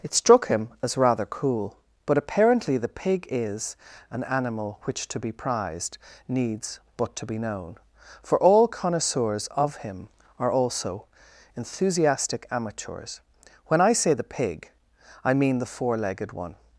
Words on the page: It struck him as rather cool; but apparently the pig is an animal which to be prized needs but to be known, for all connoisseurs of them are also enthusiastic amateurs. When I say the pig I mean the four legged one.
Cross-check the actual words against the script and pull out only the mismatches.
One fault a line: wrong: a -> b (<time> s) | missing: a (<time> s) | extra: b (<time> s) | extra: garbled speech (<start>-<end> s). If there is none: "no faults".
wrong: them -> him (9.8 s)